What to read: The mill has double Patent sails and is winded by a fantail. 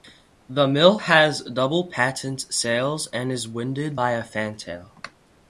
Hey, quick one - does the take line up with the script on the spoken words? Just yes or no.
yes